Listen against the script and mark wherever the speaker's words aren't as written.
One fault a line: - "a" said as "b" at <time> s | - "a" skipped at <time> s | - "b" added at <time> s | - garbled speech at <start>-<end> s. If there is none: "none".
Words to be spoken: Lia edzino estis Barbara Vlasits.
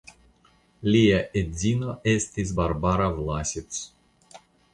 none